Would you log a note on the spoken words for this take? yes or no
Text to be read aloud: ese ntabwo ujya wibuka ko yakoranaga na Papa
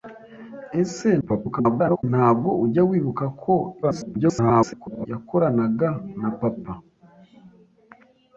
yes